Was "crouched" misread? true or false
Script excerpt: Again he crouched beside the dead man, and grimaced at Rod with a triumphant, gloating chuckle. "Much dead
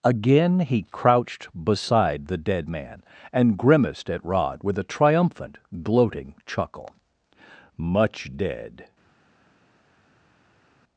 false